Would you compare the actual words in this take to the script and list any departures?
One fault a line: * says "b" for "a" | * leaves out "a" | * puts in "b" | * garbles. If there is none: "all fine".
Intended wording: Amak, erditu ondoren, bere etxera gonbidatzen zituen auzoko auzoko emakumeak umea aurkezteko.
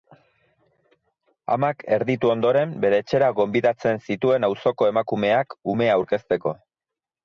* leaves out "auzoko"